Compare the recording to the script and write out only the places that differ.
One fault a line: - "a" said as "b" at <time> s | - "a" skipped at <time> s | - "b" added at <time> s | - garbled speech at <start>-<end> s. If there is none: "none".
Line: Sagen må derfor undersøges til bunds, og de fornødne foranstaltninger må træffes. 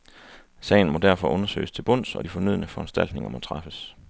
none